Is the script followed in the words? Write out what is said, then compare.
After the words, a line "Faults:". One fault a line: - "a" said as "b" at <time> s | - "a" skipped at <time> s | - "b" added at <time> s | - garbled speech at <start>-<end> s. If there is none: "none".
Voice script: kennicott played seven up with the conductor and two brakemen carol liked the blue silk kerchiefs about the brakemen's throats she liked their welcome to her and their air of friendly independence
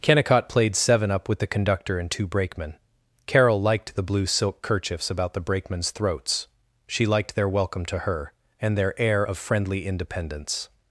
kennicott played seven up with the conductor and two brakemen carol liked the blue silk kerchiefs about the brakemen's throats she liked their welcome to her and their air of friendly independence
Faults:
none